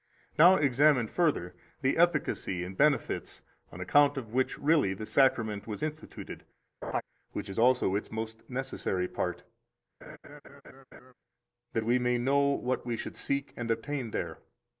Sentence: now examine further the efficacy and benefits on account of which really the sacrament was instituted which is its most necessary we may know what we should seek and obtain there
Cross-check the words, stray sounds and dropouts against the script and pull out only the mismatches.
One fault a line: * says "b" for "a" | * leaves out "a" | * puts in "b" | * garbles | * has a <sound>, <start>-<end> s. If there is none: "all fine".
* has a laugh, 6.8-7.0 s
* puts in "also"
* puts in "part that"
* has a laugh, 10.0-11.1 s